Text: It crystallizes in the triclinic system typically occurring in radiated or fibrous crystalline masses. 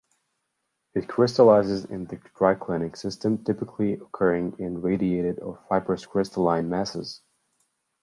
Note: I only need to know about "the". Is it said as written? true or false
true